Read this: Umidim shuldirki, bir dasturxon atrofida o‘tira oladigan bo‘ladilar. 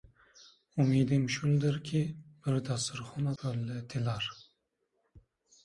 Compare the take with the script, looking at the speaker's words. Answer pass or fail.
fail